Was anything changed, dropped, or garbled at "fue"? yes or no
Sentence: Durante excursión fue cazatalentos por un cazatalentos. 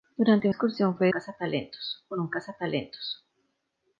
no